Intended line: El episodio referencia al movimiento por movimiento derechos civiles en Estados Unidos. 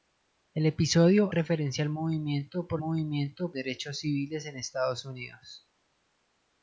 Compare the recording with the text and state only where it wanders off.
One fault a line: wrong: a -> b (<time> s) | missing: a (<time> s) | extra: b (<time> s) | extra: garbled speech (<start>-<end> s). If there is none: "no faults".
no faults